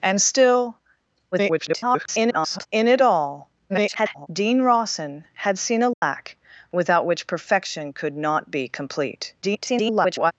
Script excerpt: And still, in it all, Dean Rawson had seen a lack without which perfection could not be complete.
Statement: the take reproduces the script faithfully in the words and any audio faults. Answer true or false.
false